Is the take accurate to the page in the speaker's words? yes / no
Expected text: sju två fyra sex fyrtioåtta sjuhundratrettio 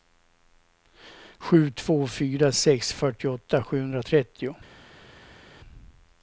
yes